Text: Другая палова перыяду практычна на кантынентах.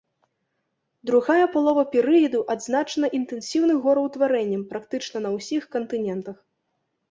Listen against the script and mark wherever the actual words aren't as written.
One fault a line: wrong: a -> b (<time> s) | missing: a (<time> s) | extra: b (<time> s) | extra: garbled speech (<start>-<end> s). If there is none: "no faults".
extra: адзначана інтэнсіўным гораўтварэннем (2.5 s)
extra: ўсіх (5.4 s)